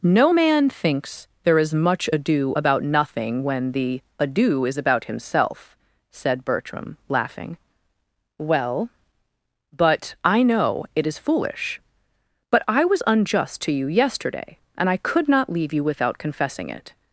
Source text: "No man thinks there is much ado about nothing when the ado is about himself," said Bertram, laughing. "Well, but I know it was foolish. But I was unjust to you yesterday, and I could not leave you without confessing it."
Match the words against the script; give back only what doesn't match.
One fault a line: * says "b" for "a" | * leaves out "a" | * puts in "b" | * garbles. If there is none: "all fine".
* says "is" for "was"